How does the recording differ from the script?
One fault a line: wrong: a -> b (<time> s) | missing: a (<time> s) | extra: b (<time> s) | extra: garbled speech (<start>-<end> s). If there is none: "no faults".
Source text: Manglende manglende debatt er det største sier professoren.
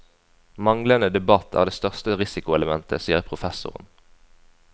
missing: manglende (1.1 s)
extra: risikoelementet (2.2 s)